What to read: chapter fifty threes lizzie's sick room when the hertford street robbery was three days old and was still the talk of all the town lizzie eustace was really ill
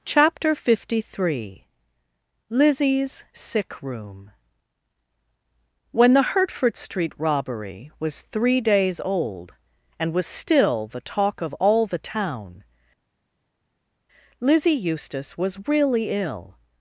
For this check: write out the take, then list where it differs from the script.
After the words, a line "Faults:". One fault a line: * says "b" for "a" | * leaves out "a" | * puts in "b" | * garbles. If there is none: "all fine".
chapter fifty three lizzie's sick room when the hertford street robbery was three days old and was still the talk of all the town lizzie eustace was really ill
Faults:
* says "three" for "threes"